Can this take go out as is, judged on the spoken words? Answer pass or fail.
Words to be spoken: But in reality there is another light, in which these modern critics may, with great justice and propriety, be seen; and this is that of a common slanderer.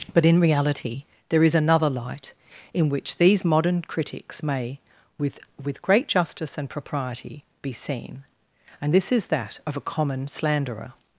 fail